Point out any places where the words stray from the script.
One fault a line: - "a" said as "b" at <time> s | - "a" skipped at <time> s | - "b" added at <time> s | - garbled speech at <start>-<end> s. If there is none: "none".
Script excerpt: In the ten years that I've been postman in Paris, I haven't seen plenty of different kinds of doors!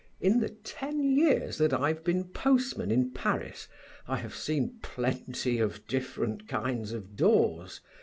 - "haven't" said as "have" at 4.2 s